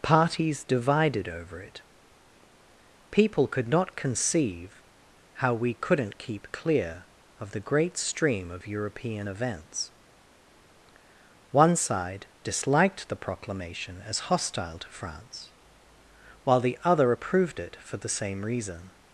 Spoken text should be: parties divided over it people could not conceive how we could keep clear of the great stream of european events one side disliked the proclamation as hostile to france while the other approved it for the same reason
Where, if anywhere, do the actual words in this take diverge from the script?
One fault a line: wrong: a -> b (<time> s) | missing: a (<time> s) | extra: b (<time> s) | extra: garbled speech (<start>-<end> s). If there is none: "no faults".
wrong: could -> couldn't (5.7 s)